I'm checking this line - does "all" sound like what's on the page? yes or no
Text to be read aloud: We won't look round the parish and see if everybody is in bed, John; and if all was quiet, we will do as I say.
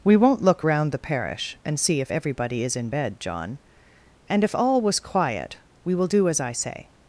yes